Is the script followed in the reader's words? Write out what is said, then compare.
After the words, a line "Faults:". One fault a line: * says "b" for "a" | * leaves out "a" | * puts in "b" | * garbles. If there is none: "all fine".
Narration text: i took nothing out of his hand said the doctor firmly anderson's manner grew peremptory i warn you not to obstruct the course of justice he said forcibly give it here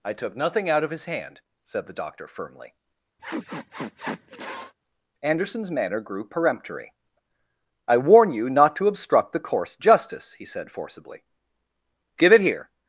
i took nothing out of his hand said the doctor firmly anderson's manner grew peremptory i warn you not to obstruct the course justice he said forcibly give it here
Faults:
* leaves out "of"